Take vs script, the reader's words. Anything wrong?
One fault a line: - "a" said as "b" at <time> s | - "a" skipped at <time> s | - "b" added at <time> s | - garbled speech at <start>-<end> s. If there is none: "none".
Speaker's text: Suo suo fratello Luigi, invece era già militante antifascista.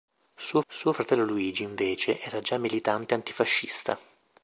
none